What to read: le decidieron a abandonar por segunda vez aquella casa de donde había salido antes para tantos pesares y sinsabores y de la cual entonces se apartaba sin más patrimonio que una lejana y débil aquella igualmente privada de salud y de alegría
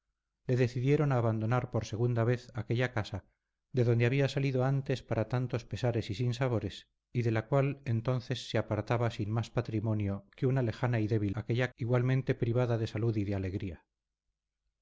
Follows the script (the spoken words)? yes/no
yes